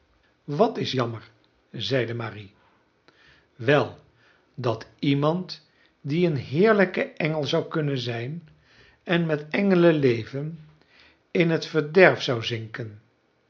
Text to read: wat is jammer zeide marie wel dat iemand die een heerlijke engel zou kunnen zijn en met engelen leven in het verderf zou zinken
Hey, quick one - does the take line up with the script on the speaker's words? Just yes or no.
yes